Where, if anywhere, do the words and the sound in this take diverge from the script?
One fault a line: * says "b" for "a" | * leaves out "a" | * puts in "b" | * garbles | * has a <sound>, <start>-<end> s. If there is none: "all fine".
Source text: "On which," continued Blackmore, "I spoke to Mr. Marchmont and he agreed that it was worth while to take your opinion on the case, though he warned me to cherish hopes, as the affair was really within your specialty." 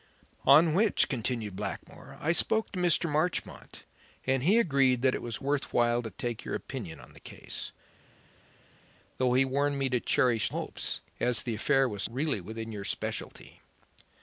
all fine